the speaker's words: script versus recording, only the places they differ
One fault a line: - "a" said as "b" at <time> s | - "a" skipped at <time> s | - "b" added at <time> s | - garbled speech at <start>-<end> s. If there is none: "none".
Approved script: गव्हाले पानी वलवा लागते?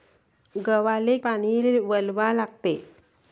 none